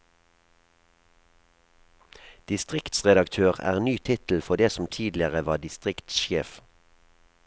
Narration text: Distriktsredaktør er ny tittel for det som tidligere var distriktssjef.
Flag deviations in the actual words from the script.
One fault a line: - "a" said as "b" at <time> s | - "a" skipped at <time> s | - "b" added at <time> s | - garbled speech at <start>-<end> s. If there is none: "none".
none